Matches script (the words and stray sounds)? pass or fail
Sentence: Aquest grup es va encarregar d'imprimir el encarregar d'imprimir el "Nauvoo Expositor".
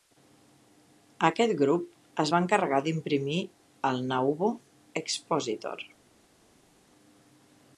fail